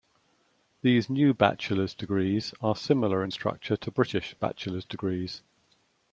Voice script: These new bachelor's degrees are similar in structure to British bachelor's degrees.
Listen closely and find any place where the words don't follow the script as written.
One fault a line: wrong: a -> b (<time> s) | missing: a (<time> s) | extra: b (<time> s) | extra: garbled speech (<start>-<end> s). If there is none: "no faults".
no faults